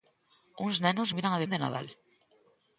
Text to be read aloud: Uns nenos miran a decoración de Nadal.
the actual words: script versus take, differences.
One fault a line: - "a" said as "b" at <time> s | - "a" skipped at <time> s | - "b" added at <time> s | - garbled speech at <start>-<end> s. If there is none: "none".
- "decoración" skipped at 1.4 s